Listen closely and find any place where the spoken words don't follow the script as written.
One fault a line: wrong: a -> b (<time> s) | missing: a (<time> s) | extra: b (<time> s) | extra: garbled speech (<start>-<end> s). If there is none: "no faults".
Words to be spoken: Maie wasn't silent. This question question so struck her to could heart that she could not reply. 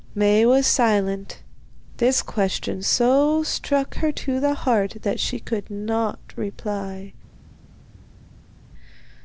wrong: wasn't -> was (0.5 s)
missing: question (2.8 s)
wrong: could -> the (4.4 s)